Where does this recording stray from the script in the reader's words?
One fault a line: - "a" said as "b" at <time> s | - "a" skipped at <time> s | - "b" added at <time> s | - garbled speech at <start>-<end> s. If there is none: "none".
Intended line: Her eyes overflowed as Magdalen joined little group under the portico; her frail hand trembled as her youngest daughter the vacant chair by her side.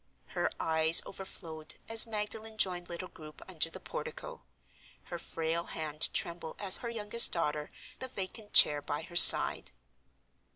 none